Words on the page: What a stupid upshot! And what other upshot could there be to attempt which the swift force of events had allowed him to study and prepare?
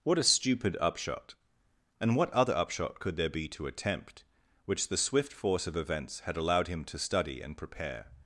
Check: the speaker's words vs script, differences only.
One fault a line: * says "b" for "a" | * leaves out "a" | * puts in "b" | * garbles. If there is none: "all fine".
all fine